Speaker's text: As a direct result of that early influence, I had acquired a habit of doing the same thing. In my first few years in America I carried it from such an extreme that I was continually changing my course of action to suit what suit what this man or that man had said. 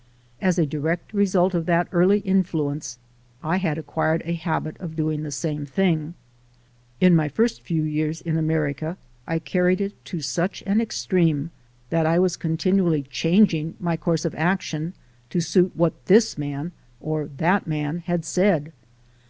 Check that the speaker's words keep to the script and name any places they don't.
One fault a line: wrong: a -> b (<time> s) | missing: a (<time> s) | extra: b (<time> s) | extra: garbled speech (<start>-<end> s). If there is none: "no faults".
wrong: from -> to (10.0 s)
missing: suit what (16.0 s)